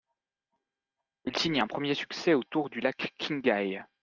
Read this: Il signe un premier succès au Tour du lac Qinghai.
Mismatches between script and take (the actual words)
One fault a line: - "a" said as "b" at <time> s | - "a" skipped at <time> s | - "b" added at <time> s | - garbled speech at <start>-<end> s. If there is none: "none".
none